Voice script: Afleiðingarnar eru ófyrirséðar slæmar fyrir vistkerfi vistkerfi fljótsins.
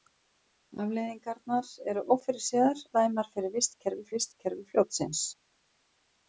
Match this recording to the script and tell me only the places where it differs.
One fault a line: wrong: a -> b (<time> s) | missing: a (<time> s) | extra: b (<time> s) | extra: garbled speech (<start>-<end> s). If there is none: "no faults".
no faults